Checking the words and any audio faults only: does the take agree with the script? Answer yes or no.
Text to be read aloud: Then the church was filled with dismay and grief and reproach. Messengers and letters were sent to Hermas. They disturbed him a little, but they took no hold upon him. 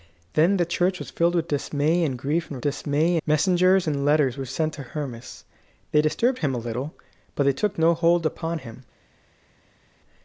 no